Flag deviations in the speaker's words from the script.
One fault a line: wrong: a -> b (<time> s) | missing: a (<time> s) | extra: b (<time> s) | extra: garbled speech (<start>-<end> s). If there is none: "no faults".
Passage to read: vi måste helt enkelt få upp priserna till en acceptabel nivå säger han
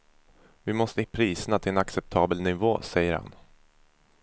missing: helt enkelt få (1.0 s)